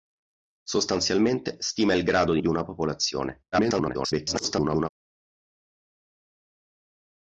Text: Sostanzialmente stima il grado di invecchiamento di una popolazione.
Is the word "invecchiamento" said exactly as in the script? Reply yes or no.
no